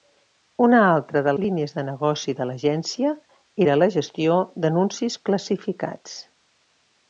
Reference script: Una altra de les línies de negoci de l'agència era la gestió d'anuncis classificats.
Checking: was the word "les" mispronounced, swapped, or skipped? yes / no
yes